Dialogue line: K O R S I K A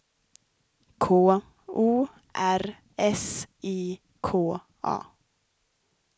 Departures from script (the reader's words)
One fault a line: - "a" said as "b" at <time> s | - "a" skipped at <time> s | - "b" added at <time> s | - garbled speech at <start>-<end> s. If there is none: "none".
none